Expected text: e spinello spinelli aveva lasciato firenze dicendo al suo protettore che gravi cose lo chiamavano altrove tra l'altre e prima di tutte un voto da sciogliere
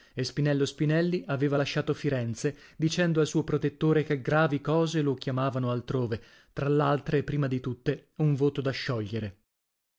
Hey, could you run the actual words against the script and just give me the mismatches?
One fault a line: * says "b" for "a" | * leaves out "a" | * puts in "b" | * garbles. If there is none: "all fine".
all fine